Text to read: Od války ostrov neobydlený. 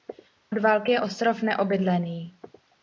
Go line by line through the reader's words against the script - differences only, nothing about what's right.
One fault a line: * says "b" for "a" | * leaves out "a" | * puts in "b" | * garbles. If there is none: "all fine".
* puts in "je"